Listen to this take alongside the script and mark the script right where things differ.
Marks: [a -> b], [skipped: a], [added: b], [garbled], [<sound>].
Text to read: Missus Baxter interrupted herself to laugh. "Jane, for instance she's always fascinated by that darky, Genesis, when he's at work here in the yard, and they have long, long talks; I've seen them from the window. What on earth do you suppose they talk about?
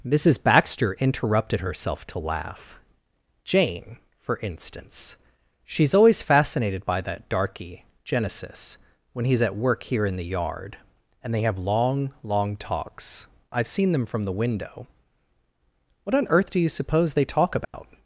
Missus Baxter interrupted herself to laugh. "Jane, for instance she's always fascinated by that darky, Genesis, when he's at work here in the yard, and they have long, long talks; I've seen them from the window. What on earth do you suppose they talk about? [dropout]